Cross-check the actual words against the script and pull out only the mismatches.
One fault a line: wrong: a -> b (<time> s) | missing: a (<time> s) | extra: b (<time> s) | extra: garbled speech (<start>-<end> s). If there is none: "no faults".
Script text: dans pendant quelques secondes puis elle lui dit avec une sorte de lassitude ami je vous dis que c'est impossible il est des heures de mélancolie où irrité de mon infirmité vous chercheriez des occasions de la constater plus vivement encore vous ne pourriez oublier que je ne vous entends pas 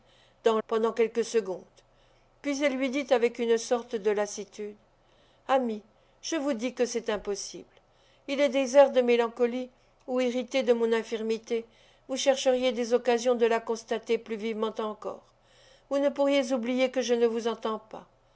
no faults